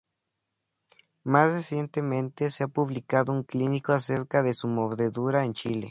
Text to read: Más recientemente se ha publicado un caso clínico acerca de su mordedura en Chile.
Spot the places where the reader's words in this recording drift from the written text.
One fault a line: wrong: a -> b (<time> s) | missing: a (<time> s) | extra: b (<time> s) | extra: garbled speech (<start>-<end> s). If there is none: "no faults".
missing: caso (3.4 s)